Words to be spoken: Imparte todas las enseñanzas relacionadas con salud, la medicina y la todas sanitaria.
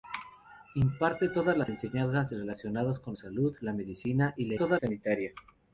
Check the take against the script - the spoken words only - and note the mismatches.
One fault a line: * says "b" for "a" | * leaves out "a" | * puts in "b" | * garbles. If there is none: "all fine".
all fine